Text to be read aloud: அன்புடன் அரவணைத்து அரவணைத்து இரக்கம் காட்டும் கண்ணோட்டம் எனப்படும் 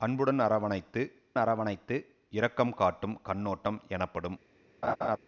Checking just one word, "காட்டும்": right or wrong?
right